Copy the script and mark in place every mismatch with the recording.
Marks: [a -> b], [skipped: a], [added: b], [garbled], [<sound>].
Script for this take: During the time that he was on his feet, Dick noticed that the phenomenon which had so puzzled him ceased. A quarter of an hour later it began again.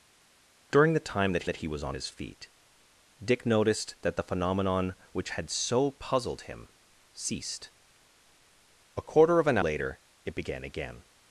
During the time that [added: that] he was on his feet, Dick noticed that the phenomenon which had so puzzled him ceased. A quarter of an [skipped: hour] later it began again.